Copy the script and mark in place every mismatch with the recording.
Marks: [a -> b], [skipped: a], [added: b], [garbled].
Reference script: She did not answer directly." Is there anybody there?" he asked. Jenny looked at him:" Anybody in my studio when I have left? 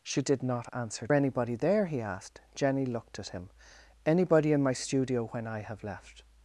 She did not answer [skipped: directly." Is there] anybody there?" he asked. Jenny looked at him:" Anybody in my studio when I have left?